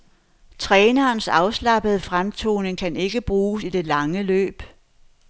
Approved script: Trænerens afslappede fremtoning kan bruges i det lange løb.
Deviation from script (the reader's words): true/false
true